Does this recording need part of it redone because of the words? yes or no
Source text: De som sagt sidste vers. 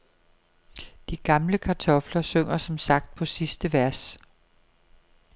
yes